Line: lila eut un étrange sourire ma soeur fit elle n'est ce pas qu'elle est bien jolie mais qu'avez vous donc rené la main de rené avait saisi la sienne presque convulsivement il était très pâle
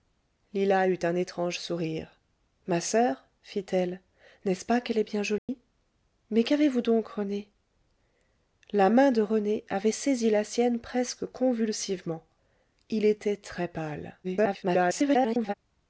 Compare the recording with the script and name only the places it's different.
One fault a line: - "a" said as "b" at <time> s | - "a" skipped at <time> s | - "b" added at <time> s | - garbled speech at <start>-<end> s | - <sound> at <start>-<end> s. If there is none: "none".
- dropout at 5.4-5.5 s
- garbled speech at 14.2-15.5 s